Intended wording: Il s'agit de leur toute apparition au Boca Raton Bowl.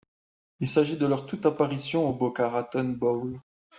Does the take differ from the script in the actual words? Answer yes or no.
no